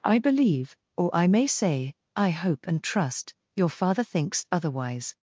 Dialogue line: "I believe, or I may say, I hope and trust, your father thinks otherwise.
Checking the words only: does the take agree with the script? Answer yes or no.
yes